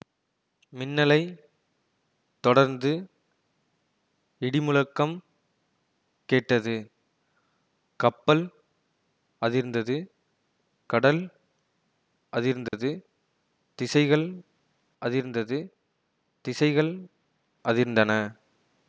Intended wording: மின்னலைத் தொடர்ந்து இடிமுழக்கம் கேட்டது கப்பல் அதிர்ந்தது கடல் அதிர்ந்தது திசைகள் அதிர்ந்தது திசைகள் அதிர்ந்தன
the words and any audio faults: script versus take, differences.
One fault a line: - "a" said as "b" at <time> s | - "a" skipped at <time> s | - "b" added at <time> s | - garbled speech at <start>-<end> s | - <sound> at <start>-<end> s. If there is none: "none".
- dropout at 12.7-12.7 s